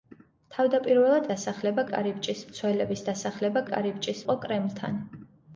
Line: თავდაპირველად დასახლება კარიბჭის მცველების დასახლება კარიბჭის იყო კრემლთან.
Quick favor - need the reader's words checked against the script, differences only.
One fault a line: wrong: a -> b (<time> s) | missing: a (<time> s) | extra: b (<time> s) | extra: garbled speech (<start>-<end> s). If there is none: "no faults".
no faults